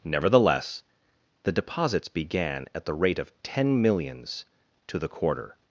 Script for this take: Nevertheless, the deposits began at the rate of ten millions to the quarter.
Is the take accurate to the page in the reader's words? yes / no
yes